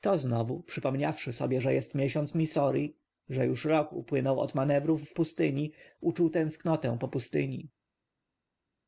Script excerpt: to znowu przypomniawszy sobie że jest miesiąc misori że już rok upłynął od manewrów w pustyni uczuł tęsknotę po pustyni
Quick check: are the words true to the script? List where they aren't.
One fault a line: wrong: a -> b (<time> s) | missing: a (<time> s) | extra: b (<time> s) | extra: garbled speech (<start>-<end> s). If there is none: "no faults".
no faults